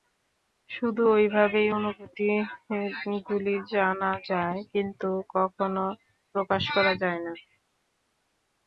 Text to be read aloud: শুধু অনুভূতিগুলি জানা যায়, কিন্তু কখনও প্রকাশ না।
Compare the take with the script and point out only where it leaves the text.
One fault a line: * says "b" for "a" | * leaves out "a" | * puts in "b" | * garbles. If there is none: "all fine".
* puts in "ঐভাবেই"
* puts in "করা যায়"